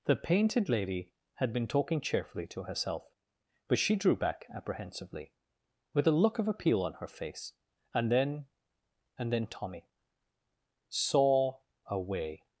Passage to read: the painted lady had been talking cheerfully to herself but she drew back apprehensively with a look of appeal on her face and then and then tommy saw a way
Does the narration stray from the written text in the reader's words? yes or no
no